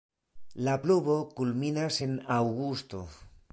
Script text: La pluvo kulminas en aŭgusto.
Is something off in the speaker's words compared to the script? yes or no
no